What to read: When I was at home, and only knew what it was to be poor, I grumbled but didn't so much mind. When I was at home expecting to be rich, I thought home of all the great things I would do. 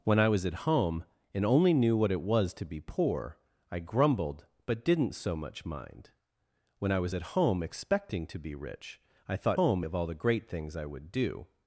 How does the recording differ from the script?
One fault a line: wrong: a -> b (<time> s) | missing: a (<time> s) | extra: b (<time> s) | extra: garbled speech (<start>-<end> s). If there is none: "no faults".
no faults